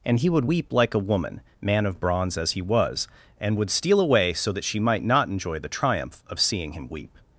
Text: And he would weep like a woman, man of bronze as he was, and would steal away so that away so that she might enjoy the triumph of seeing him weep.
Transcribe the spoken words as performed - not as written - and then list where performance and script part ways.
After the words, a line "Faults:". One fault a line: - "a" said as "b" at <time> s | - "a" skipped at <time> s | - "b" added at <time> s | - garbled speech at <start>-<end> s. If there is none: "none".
And he would weep like a woman, man of bronze as he was, and would steal away so that she might not enjoy the triumph of seeing him weep.
Faults:
- "away so that" skipped at 4.6 s
- "not" added at 5.0 s